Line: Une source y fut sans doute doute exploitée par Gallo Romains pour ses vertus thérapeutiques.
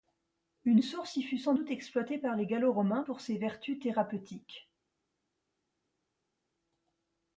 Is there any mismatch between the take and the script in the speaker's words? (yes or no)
yes